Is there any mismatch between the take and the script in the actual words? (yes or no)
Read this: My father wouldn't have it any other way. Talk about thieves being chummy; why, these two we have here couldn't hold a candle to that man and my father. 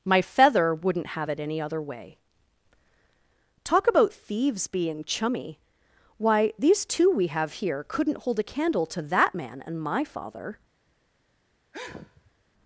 yes